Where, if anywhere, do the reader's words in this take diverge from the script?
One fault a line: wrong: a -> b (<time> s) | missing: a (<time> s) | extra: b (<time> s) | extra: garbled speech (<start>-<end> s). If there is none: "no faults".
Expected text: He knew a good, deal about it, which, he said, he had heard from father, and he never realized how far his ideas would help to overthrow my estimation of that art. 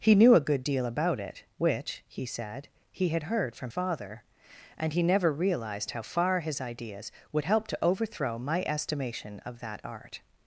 no faults